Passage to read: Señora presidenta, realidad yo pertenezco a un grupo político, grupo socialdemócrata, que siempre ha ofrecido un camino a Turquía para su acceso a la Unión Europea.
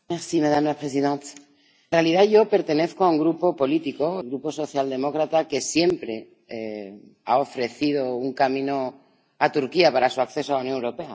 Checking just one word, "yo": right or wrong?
right